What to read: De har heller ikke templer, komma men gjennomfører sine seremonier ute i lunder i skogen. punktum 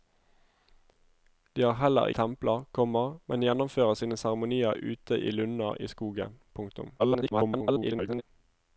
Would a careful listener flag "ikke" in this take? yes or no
yes